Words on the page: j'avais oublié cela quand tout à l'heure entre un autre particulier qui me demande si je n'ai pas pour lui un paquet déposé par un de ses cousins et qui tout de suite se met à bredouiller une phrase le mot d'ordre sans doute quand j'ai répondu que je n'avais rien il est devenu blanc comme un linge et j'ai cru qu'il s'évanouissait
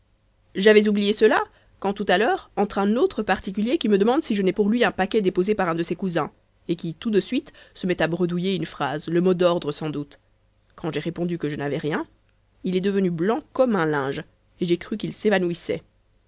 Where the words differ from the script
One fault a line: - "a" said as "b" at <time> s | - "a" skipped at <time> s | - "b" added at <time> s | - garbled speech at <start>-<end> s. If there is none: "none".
- "pas" skipped at 4.5 s